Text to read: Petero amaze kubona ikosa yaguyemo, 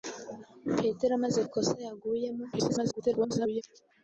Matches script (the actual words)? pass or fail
fail